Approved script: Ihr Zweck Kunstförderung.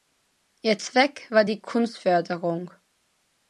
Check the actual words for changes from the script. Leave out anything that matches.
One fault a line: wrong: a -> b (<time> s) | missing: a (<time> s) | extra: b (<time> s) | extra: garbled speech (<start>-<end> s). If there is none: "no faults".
extra: war die (1.3 s)